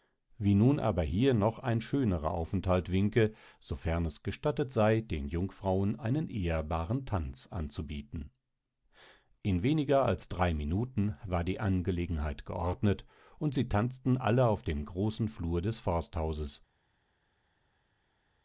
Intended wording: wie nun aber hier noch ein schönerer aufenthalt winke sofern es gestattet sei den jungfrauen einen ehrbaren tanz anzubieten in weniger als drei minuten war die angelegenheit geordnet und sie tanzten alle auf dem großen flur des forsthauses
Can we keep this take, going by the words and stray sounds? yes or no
yes